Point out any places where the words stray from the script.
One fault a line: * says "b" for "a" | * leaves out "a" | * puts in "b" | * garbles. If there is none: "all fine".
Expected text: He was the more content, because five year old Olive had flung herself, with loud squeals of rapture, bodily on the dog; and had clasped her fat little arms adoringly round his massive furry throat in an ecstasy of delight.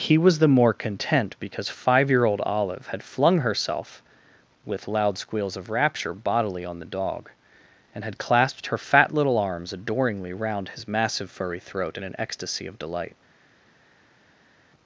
all fine